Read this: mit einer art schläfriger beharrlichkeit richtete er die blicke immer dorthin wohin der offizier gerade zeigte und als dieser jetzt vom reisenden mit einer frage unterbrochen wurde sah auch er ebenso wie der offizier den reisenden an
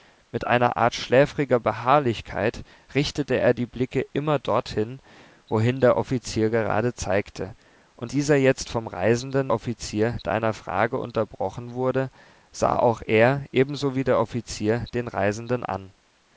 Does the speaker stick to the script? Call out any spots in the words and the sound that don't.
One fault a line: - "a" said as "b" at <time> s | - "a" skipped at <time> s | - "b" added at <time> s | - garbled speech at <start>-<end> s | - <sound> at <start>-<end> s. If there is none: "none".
- "als" skipped at 8.1 s
- "mit" said as "offizier" at 9.5 s